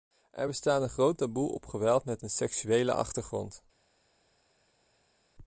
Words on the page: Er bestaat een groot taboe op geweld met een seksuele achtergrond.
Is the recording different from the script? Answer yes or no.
no